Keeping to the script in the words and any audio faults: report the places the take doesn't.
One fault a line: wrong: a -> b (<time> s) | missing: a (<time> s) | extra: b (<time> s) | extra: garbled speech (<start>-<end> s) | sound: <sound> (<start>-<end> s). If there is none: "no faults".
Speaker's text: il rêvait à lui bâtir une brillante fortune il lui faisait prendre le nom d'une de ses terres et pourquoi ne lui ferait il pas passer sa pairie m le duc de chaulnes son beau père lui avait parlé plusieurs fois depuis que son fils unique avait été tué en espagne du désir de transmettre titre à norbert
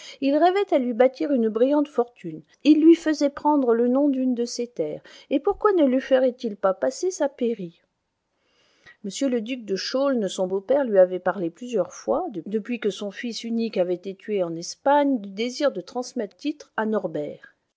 no faults